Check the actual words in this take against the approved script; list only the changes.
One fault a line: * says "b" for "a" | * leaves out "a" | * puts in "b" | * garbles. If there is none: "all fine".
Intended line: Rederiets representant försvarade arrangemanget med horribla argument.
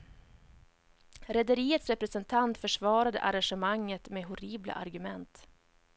all fine